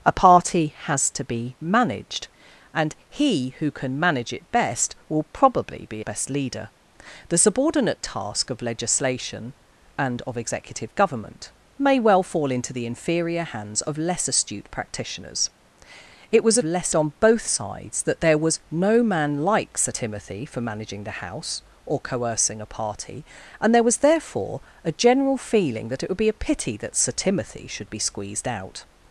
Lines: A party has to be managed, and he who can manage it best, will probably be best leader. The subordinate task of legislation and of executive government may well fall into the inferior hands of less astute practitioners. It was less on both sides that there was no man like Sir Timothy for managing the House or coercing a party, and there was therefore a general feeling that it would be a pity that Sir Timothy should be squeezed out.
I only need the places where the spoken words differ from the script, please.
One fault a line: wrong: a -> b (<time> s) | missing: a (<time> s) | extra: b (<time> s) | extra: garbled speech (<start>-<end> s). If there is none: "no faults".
no faults